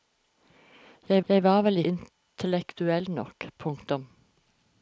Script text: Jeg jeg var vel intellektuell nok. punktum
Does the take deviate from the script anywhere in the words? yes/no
no